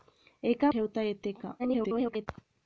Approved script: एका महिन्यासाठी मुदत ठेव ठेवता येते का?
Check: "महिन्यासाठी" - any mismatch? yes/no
yes